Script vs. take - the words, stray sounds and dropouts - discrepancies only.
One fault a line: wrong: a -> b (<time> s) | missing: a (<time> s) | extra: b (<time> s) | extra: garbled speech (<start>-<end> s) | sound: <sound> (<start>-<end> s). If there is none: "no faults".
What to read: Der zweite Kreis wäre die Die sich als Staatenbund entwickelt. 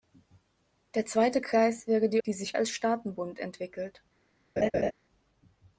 sound: laugh (4.6-4.9 s)